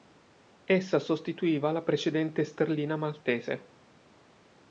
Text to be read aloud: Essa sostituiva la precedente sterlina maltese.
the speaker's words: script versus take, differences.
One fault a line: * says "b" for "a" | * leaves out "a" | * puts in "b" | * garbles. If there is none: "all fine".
all fine